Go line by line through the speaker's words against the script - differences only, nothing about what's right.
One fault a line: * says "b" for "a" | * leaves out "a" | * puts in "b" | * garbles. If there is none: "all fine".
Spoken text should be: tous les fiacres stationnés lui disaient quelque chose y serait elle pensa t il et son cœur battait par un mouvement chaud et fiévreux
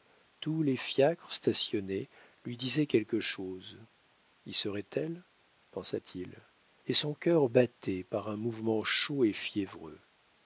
all fine